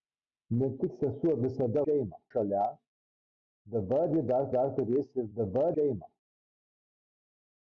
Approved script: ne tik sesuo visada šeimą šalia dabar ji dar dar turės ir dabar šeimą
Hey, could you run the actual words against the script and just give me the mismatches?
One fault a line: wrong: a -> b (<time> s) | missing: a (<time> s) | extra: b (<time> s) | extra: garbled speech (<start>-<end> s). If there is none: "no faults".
no faults